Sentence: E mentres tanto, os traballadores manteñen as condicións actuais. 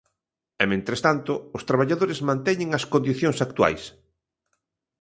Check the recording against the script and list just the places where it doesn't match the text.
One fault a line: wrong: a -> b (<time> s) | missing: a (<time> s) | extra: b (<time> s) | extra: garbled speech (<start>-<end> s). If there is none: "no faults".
no faults